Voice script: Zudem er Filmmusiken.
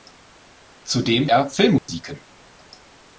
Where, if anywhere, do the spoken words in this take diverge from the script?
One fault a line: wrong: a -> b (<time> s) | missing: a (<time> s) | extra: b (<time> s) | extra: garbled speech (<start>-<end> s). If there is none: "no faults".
no faults